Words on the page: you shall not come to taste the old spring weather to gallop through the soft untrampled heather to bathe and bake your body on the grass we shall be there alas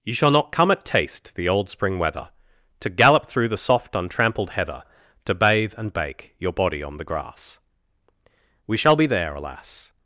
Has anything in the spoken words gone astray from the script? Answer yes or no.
yes